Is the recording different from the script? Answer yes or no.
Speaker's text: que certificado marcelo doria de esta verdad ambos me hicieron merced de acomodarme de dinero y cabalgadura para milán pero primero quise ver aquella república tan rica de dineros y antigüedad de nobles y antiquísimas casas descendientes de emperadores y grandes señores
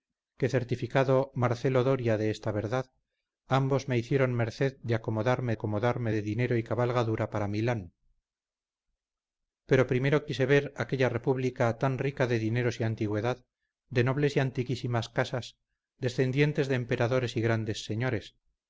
yes